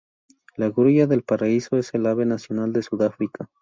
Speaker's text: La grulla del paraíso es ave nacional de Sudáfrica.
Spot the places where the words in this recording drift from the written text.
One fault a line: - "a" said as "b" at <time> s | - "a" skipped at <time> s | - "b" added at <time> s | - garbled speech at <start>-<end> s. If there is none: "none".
- "el" added at 1.9 s